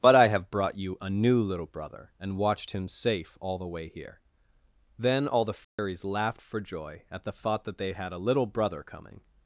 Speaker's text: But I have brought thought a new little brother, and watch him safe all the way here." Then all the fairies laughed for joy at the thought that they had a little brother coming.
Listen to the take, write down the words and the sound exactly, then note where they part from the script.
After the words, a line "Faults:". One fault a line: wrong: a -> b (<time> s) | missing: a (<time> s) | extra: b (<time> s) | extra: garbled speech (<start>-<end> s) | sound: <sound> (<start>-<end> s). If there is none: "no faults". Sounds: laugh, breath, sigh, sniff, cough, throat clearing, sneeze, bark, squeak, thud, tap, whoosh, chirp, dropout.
But I have brought you a new little brother, and watched him safe all the way here." Then all the fairies laughed for joy at the thought that they had a little brother coming.
Faults:
wrong: thought -> you (0.8 s)
wrong: watch -> watched (2.4 s)
sound: dropout (5.6-5.8 s)